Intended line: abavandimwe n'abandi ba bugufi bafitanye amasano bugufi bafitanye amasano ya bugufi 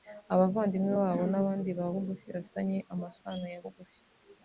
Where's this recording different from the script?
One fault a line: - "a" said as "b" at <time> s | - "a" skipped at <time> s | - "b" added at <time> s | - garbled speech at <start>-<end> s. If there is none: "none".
- "babo" added at 1.0 s
- "bugufi bafitanye amasano" skipped at 3.4 s